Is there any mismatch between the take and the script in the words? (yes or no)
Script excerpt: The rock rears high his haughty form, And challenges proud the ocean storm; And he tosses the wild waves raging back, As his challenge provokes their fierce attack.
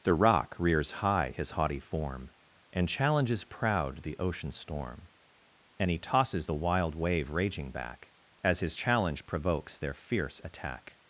yes